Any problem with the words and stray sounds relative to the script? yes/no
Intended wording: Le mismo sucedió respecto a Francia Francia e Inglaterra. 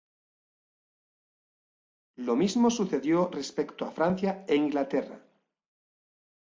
yes